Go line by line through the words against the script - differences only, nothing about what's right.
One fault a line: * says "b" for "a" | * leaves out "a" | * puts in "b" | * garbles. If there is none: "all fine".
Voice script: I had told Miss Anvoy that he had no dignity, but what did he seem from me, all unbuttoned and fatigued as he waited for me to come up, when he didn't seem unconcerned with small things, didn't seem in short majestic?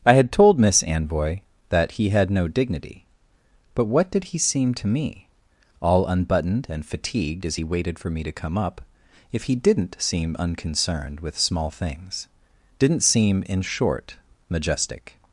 * says "to" for "from"
* says "if" for "when"